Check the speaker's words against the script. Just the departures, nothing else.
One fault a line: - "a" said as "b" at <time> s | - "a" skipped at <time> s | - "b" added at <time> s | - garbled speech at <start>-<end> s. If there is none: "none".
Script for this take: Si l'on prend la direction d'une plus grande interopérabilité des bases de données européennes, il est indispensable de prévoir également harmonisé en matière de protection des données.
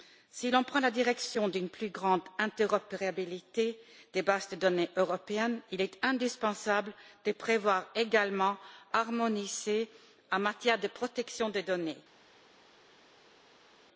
none